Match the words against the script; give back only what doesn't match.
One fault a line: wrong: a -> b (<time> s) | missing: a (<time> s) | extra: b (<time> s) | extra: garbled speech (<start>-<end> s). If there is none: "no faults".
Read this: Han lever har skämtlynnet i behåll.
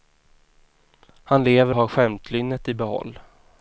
no faults